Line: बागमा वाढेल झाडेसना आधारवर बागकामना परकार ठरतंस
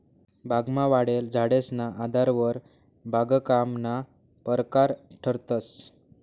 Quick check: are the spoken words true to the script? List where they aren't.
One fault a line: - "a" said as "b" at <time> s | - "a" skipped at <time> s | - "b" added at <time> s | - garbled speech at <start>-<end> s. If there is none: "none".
none